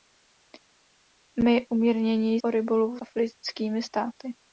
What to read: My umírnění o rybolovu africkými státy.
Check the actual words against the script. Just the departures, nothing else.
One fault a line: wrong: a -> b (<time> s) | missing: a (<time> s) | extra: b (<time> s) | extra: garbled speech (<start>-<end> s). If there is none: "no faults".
no faults